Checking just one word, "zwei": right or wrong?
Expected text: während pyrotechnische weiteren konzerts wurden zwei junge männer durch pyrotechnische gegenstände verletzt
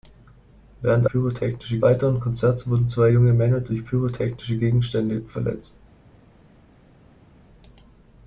right